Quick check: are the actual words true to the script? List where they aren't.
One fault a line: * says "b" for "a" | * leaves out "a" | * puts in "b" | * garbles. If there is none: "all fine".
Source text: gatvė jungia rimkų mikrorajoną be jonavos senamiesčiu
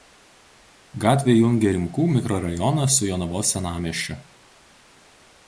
* says "su" for "be"